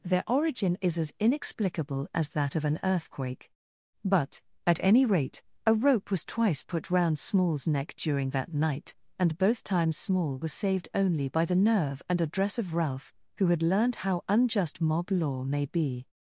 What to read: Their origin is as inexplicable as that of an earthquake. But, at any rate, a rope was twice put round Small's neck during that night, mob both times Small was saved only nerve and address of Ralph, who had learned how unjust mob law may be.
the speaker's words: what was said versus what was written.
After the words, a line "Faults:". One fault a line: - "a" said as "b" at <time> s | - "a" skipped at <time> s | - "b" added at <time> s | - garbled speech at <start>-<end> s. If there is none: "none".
Their origin is as inexplicable as that of an earthquake. But, at any rate, a rope was twice put round Small's neck during that night, and both times Small was saved only by the nerve and address of Ralph, who had learned how unjust mob law may be.
Faults:
- "mob" said as "and" at 9.2 s
- "by the" added at 11.3 s